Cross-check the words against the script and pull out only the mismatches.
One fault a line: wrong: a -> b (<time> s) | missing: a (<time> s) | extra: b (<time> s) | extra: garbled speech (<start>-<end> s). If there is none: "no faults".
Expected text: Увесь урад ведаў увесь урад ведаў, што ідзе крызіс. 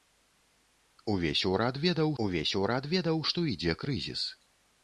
no faults